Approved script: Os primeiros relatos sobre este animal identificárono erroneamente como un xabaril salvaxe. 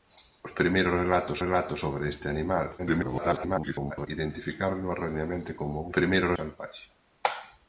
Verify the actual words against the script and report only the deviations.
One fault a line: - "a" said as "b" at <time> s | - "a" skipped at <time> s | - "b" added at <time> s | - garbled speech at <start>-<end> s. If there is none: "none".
- "relatos" added at 1.4 s
- garbled speech at 2.8-4.1 s
- "xabaril" said as "primeiros" at 6.0 s